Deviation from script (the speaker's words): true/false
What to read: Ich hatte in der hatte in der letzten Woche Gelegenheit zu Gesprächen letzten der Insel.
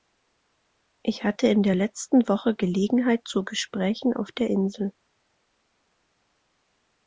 true